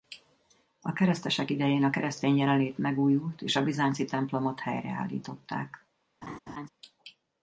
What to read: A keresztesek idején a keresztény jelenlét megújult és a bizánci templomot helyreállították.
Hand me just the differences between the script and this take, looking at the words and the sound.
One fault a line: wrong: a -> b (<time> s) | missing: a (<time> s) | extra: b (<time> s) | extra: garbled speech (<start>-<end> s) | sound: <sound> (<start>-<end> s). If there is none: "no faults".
sound: laugh (6.2-6.7 s)